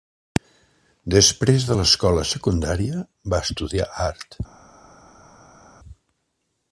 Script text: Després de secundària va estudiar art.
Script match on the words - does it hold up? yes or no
no